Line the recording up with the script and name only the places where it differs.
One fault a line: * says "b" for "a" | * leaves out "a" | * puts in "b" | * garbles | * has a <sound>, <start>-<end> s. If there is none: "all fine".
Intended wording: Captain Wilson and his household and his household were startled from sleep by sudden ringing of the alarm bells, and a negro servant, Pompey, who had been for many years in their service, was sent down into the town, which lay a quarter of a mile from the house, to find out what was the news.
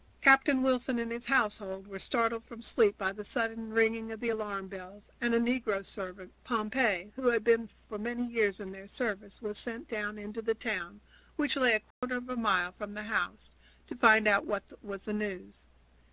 * leaves out "and his household"
* puts in "the"
* has a dropout, 11.9-12.0 s